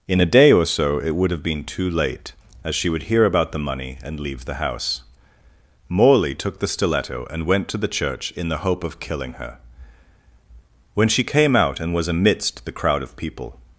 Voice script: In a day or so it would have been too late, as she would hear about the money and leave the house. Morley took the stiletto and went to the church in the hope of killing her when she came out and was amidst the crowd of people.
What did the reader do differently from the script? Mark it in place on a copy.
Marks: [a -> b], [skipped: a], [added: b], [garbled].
In a day or so it would have been too late, as she would hear about the money and leave the house. Morley took the stiletto and went to the church in the hope of killing her when she came out and was amidst the crowd of people.